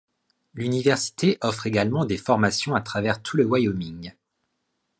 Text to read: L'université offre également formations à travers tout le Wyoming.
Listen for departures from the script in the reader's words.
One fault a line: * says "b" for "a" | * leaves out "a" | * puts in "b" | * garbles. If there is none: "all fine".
* puts in "des"